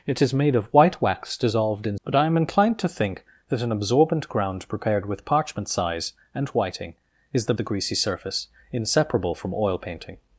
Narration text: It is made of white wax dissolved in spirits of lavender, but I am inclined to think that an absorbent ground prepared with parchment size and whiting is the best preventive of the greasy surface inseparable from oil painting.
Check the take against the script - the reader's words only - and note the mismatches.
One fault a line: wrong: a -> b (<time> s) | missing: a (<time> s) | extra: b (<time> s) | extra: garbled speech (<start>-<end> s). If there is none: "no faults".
missing: spirits of lavender (2.0 s)
missing: best preventive of (7.5 s)